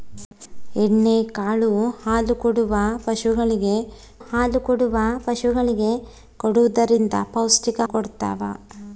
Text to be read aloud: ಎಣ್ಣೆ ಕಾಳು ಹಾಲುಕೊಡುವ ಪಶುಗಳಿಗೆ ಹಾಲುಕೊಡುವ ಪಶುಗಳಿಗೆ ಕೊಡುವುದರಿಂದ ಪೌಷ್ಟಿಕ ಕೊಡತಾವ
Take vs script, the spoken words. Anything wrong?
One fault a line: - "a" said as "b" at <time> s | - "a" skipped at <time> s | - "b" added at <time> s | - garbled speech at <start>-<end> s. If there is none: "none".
none